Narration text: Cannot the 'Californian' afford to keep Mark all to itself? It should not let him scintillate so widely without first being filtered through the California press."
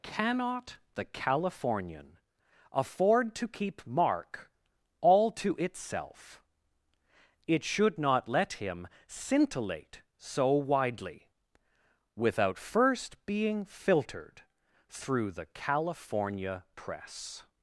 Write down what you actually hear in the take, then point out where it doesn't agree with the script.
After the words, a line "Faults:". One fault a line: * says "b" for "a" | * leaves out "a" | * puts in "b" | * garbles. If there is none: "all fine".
Cannot the 'Californian' afford to keep Mark all to itself? It should not let him scintillate so widely without first being filtered through the California press."
Faults:
all fine